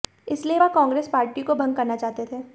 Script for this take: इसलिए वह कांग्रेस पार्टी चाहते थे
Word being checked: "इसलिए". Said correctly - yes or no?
yes